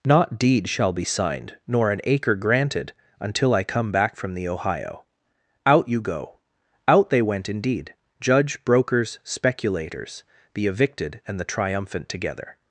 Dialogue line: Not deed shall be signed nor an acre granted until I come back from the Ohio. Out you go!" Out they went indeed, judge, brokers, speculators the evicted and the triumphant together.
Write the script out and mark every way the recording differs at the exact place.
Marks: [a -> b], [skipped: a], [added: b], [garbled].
Not deed shall be signed nor an acre granted until I come back from the Ohio. Out you go!" Out they went indeed, judge, brokers, speculators the evicted and the triumphant together.